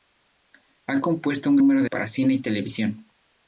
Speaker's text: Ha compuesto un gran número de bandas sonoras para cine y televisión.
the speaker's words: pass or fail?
fail